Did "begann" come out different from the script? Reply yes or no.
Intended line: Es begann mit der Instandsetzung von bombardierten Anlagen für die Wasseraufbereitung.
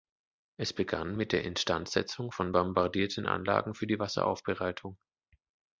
no